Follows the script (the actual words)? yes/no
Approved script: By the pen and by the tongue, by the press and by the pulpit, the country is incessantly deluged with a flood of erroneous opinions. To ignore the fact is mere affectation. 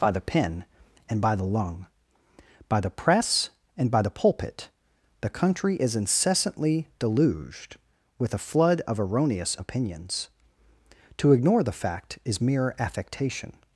no